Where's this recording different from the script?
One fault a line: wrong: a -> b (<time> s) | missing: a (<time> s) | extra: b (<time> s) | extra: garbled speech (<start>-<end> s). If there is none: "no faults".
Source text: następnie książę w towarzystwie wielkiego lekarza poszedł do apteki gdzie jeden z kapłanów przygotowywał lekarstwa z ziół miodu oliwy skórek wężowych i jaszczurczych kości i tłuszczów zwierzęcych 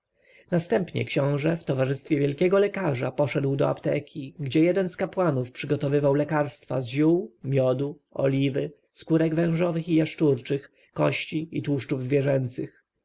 no faults